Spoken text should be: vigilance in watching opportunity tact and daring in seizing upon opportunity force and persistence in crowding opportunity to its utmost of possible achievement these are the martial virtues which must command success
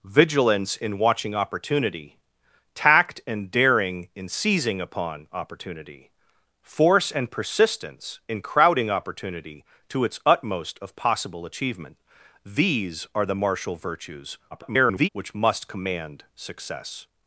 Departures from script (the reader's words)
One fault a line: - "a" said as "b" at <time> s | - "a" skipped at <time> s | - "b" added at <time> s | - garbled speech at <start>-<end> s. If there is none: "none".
- garbled speech at 14.5-15.1 s